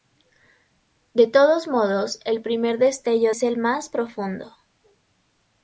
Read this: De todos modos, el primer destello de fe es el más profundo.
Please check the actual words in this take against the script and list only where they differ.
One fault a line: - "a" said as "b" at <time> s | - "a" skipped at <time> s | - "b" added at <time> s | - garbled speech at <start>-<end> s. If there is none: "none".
- "de fe" skipped at 3.3 s